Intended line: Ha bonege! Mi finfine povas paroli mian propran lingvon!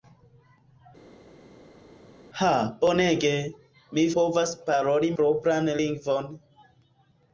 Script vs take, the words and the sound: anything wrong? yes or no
yes